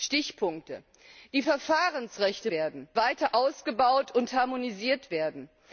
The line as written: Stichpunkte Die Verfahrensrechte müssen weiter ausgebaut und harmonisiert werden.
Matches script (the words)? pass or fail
fail